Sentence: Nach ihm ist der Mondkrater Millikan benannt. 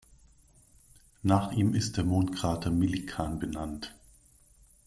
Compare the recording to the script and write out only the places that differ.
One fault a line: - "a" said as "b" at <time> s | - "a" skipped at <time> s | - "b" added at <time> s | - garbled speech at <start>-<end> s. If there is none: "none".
none